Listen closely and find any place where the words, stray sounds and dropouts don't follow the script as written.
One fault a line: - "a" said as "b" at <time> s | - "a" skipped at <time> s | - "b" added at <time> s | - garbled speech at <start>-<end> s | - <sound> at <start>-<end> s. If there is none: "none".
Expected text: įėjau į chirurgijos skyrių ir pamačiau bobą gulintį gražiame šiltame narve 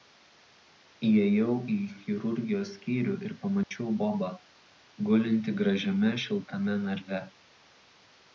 - dropout at 3.6-3.7 s